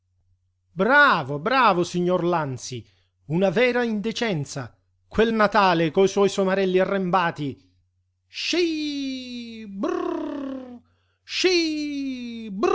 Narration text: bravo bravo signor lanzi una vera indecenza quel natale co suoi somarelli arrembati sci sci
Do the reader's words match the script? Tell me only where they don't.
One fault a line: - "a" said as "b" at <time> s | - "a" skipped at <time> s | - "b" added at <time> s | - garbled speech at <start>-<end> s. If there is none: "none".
- "brrr" added at 9.7 s